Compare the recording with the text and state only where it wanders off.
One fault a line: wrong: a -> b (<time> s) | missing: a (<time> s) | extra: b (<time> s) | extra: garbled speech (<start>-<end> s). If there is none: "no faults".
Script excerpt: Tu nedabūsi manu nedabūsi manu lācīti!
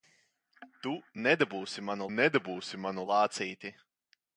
no faults